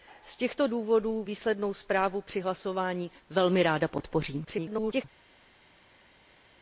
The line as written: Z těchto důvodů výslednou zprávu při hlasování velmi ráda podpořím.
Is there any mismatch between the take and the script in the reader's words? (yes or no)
yes